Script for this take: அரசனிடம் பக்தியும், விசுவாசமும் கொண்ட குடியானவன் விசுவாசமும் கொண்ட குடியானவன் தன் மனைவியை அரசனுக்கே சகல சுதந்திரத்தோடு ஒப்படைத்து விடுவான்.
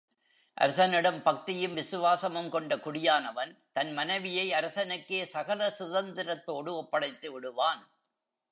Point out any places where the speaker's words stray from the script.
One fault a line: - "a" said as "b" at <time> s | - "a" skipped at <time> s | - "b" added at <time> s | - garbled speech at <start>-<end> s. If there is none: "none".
- "விசுவாசமும் கொண்ட குடியானவன்" skipped at 3.5 s